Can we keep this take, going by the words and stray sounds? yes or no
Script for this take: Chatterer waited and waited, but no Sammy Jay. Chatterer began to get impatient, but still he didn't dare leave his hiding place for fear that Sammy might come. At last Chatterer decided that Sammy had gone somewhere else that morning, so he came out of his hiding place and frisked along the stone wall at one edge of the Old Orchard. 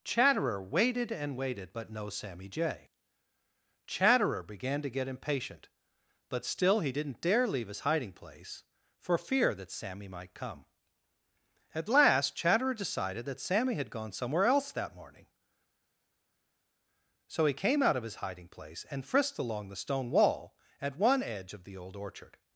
yes